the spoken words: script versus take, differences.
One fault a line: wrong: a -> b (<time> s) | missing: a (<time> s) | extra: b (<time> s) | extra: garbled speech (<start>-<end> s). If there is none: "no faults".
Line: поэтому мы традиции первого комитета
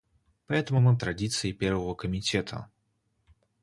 no faults